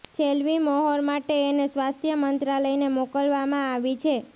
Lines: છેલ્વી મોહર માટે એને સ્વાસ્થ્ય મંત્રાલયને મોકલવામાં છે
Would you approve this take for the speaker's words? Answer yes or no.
no